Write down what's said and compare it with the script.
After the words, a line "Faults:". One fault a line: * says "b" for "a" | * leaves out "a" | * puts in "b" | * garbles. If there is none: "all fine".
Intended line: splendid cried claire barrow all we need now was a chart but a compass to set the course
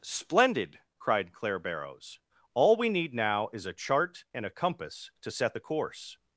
splendid cried claire barrows all we need now is a chart and a compass to set the course
Faults:
* says "barrows" for "barrow"
* says "is" for "was"
* says "and" for "but"